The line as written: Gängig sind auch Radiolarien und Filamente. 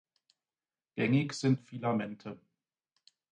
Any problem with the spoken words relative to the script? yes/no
yes